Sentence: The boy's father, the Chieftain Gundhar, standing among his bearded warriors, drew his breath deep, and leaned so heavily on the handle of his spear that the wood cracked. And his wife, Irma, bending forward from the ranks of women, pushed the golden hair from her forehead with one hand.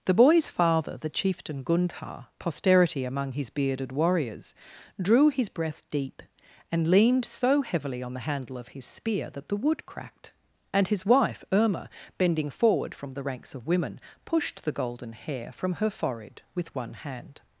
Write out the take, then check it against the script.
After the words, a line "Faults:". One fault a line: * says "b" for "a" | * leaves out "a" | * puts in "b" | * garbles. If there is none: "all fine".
The boy's father, the Chieftain Gundhar, posterity among his bearded warriors, drew his breath deep, and leaned so heavily on the handle of his spear that the wood cracked. And his wife, Irma, bending forward from the ranks of women, pushed the golden hair from her forehead with one hand.
Faults:
* says "posterity" for "standing"